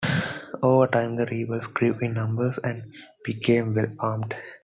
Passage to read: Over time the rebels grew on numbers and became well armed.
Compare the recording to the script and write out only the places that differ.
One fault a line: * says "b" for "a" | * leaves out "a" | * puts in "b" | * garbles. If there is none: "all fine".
* says "in" for "on"